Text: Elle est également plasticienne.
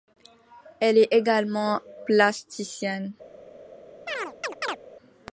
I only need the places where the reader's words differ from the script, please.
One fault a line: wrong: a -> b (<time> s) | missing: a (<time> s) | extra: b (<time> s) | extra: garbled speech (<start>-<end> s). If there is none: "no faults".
no faults